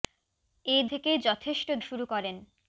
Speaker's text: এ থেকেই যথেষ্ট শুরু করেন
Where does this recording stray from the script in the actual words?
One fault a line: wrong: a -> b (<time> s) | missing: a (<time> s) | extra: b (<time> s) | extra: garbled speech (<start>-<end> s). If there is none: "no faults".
no faults